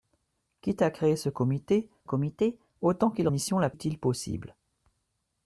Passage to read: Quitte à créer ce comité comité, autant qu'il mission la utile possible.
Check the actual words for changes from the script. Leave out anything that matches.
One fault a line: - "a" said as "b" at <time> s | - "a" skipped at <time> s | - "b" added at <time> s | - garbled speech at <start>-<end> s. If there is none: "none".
none